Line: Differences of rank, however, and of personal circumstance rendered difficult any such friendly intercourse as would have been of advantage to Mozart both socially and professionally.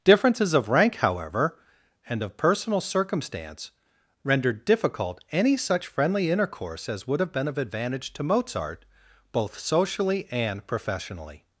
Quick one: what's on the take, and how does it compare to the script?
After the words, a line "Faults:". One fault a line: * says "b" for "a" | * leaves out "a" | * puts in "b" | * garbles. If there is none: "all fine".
Differences of rank, however, and of personal circumstance rendered difficult any such friendly intercourse as would have been of advantage to Mozart both socially and professionally.
Faults:
all fine